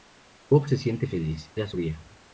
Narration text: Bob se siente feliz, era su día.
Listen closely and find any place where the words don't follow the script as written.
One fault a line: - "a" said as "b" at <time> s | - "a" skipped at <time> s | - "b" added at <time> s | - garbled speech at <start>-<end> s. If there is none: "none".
none